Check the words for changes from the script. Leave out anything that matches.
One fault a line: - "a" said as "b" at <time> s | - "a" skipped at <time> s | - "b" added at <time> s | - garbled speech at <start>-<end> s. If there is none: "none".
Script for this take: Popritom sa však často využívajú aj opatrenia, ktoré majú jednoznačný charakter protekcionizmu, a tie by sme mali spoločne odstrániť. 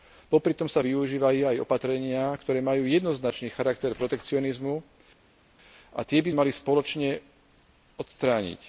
- "však často" skipped at 0.8 s
- "sme" skipped at 6.3 s